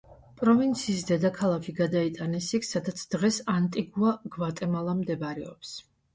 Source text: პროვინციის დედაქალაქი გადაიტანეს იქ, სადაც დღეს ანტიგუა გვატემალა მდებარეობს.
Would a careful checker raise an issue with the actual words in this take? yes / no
no